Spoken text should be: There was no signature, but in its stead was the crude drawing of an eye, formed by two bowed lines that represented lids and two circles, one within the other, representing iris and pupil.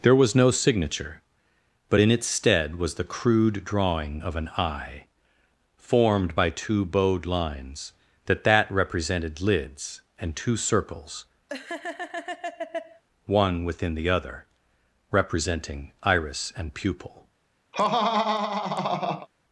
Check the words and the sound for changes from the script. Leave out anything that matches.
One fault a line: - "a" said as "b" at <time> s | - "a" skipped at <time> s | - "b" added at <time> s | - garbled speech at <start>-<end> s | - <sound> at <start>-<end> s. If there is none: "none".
- "that" added at 8.4 s
- laugh at 11.5-13.0 s
- laugh at 17.7-19.3 s